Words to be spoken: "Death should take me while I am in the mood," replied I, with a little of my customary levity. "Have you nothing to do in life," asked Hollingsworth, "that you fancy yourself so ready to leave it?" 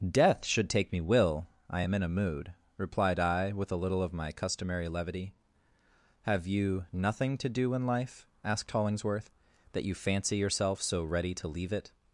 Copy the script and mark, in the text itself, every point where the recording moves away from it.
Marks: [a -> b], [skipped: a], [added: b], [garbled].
"Death should take me [while -> will] I am in [the -> a] mood," replied I, with a little of my customary levity. "Have you nothing to do in life," asked Hollingsworth, "that you fancy yourself so ready to leave it?"